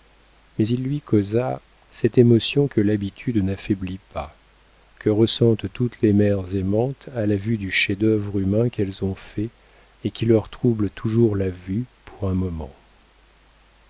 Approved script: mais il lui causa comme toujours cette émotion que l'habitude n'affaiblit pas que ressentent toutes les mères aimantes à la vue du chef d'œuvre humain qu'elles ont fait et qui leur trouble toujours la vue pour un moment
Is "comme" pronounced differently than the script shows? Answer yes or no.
yes